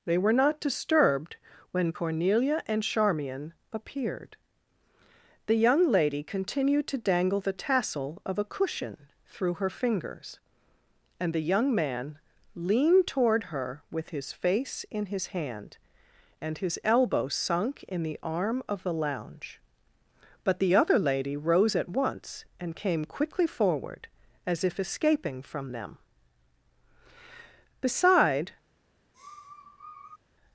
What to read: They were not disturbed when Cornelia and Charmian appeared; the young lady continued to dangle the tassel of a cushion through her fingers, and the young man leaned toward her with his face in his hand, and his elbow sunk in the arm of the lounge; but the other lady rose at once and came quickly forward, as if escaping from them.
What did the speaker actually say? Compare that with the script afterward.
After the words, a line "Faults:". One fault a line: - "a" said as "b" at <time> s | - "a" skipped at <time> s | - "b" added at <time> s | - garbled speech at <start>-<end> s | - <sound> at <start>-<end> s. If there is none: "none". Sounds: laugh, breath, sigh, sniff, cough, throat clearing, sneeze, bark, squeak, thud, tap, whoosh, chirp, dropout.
They were not disturbed when Cornelia and Charmian appeared; the young lady continued to dangle the tassel of a cushion through her fingers, and the young man leaned toward her with his face in his hand, and his elbow sunk in the arm of the lounge; but the other lady rose at once and came quickly forward, as if escaping from them. Beside
Faults:
- "Beside" added at 27.8 s
- sniff at 29.1-30.2 s